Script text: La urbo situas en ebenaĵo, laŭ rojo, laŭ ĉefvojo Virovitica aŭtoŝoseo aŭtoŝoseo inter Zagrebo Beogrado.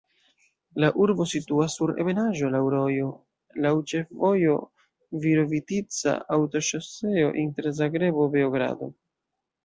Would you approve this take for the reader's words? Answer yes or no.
no